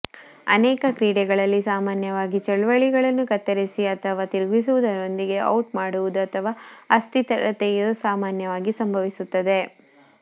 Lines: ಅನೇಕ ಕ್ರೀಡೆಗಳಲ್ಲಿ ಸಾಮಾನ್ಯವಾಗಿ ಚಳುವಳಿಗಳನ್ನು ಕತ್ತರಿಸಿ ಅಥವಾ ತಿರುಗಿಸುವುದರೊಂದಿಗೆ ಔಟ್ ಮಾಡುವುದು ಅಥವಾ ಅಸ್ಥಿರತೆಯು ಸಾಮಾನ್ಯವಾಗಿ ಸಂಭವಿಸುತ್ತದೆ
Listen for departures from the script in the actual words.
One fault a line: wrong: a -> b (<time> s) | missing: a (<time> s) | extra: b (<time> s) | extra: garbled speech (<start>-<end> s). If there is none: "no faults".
no faults